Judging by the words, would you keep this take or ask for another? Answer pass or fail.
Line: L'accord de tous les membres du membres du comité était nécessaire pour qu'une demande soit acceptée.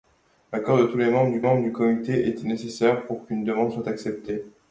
pass